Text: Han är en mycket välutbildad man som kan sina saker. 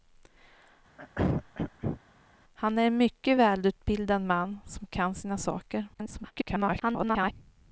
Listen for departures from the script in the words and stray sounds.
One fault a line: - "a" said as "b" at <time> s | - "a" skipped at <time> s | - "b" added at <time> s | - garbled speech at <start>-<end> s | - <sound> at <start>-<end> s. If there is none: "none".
- throat clearing at 1.0-2.0 s
- garbled speech at 5.9-7.3 s